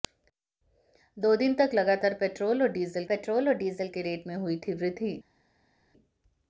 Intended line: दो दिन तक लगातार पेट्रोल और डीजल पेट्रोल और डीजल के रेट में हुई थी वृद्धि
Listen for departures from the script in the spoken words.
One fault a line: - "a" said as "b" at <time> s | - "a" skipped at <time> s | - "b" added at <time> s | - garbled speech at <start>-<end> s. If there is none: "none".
none